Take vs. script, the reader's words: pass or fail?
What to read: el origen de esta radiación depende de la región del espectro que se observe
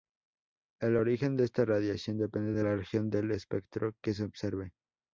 pass